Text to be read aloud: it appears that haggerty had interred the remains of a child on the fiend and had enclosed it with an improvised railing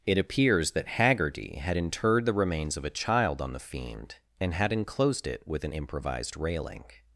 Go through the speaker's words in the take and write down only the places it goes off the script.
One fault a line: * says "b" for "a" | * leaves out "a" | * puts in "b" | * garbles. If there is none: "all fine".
all fine